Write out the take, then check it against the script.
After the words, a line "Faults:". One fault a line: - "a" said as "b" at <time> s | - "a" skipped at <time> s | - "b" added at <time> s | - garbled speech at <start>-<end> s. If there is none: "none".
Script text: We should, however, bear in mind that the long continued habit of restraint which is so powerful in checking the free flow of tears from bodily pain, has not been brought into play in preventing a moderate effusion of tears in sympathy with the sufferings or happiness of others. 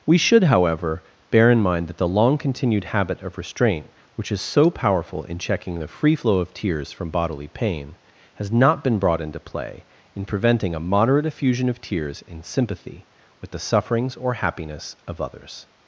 We should, however, bear in mind that the long continued habit of restraint which is so powerful in checking the free flow of tears from bodily pain, has not been brought into play in preventing a moderate effusion of tears in sympathy with the sufferings or happiness of others.
Faults:
none